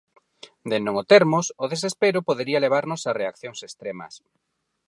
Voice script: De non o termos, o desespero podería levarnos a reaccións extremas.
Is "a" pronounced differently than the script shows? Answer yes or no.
no